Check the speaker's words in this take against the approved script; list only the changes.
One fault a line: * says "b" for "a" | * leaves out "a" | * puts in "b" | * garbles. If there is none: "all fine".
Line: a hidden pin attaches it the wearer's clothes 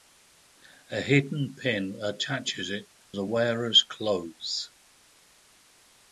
all fine